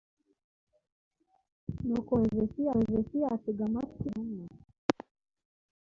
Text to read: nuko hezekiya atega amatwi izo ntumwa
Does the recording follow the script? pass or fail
fail